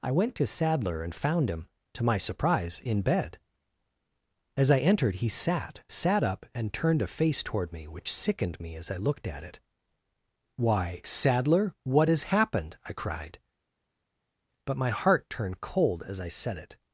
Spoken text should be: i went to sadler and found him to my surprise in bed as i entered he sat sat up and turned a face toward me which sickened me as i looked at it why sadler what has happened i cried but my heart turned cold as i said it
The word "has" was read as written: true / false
true